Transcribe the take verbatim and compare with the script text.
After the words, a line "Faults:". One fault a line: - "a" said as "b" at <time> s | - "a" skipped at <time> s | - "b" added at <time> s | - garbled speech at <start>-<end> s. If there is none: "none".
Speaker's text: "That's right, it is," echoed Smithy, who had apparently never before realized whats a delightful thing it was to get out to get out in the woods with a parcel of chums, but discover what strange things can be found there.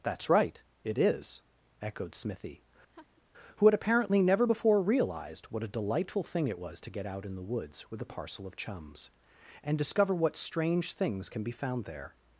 "That's right, it is," echoed Smithy, who had apparently never before realized what a delightful thing it was to get out in the woods with a parcel of chums, and discover what strange things can be found there.
Faults:
- "whats" said as "what" at 5.5 s
- "to get out" skipped at 7.2 s
- "but" said as "and" at 9.6 s